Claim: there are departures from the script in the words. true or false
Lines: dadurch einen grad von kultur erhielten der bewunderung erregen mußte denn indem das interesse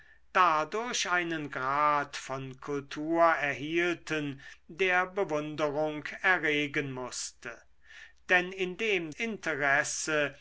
true